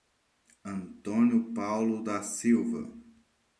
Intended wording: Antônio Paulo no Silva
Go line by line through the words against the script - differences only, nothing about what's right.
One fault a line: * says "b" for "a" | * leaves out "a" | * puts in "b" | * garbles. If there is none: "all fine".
* says "da" for "no"